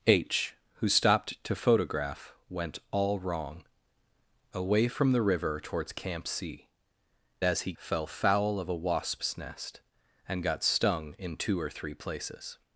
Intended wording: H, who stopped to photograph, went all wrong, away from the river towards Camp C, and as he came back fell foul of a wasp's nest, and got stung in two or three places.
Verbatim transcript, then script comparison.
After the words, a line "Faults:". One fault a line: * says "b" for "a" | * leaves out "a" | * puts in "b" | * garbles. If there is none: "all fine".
H, who stopped to photograph, went all wrong, away from the river towards Camp C, as he fell foul of a wasp's nest, and got stung in two or three places.
Faults:
* leaves out "and"
* leaves out "came back"